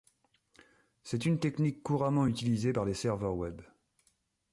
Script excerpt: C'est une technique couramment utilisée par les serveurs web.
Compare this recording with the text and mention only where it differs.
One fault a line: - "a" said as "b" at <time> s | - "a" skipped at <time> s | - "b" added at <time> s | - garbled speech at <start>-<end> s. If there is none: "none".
none